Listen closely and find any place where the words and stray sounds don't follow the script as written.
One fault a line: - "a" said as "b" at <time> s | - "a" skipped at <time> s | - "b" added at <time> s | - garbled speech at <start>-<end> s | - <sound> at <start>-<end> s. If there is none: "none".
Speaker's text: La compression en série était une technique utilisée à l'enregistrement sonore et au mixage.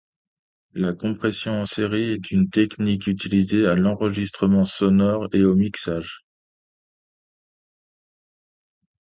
- "était" said as "est" at 2.1 s